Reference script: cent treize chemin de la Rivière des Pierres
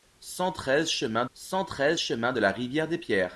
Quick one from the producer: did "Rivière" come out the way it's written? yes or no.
yes